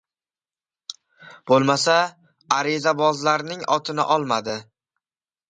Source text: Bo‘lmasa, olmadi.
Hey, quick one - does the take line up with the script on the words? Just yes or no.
no